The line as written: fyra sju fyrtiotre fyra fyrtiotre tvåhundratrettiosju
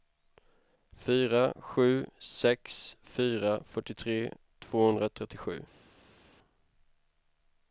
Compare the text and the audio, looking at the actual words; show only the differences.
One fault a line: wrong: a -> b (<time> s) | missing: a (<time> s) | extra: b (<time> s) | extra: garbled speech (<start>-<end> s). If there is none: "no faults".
wrong: fyrtiotre -> sex (2.3 s)